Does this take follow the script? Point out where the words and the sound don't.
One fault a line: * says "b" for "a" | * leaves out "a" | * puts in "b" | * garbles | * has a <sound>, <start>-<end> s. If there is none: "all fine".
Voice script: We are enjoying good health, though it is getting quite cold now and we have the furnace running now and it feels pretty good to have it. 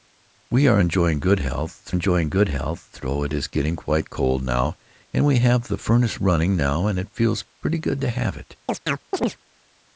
* puts in "enjoying good health"
* has a chirp, 8.7-9.4 s